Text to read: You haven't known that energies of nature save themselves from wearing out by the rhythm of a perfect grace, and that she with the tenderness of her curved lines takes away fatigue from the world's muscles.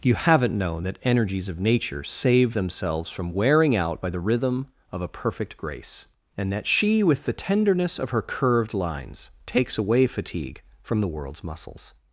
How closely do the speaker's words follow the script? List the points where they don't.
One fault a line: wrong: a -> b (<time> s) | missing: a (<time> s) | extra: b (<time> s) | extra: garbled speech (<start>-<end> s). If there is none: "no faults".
no faults